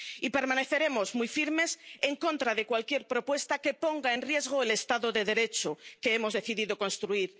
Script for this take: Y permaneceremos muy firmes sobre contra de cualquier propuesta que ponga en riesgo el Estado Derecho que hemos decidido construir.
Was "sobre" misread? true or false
true